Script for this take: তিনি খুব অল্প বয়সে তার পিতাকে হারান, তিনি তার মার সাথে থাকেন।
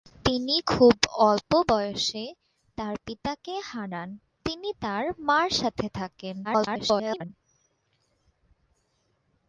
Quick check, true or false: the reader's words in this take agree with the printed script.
false